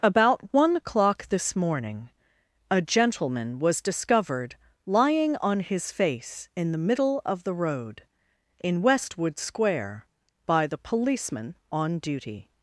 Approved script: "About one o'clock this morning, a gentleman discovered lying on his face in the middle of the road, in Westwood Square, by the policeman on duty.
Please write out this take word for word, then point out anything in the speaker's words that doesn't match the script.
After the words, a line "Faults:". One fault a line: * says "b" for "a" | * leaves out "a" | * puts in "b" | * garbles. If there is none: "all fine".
"About one o'clock this morning, a gentleman was discovered lying on his face in the middle of the road, in Westwood Square, by the policeman on duty.
Faults:
* puts in "was"